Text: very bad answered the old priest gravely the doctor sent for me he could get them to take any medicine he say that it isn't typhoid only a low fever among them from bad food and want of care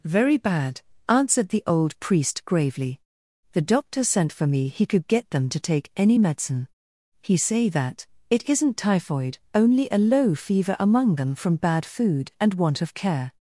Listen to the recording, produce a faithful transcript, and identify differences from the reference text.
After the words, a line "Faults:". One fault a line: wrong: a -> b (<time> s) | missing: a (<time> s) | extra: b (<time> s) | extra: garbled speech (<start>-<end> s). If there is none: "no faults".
very bad answered the old priest gravely the doctor sent for me he could get them to take any medicine he say that it isn't typhoid only a low fever among them from bad food and want of care
Faults:
no faults